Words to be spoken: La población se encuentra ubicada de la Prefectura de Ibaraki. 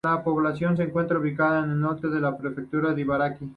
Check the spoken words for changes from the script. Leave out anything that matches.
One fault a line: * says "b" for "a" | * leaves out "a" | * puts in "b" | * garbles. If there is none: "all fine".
* puts in "al norte"